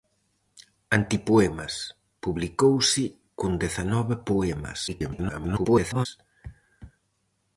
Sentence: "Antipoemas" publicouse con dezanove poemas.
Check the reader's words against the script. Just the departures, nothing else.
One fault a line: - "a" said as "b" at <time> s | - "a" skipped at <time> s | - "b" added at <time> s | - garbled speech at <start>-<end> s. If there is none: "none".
- garbled speech at 4.9-6.1 s